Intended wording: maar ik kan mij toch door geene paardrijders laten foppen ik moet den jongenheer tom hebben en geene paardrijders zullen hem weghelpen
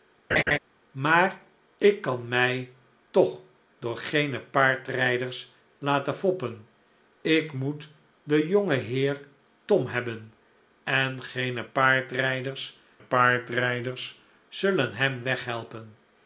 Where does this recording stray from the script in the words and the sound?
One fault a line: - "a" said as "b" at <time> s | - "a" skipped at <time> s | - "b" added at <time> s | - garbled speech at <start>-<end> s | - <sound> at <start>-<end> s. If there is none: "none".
- laugh at 0.3-0.6 s
- "paardrijders" added at 13.0 s